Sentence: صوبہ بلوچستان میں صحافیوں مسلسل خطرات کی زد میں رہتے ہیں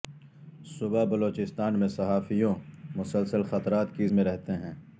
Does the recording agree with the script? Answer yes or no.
no